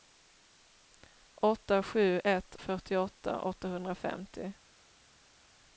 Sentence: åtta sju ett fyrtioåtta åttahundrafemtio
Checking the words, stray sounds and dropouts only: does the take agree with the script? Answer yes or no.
yes